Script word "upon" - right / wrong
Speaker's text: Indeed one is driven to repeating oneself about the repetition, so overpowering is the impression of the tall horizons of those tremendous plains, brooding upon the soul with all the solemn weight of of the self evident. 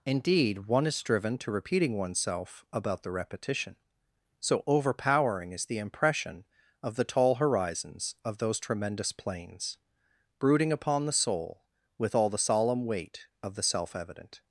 right